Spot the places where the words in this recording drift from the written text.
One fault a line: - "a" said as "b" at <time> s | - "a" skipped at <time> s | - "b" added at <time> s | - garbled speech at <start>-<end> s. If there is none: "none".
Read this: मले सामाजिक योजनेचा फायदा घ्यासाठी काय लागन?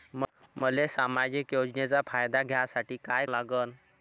none